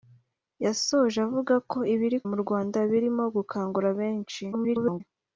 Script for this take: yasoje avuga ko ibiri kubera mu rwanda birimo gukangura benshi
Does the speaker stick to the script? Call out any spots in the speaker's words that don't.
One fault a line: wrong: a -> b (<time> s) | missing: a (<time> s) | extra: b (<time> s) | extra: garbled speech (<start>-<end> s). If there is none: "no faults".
missing: kubera (2.2 s)
extra: garbled speech (4.5-5.0 s)